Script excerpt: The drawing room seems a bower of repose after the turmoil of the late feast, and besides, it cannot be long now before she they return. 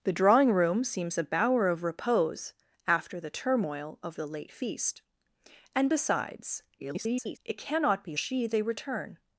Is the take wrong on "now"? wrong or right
wrong